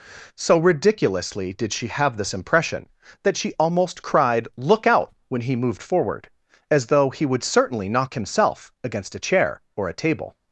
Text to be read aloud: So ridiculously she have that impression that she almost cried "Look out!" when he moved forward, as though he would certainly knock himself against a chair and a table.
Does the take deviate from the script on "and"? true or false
true